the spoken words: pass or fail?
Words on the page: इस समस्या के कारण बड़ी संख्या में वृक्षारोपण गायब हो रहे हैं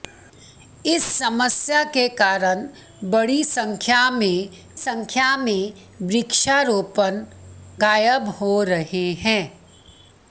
fail